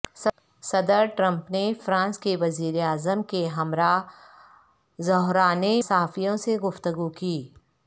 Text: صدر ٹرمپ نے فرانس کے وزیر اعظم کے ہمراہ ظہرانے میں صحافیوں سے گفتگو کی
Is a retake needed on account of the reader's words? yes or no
yes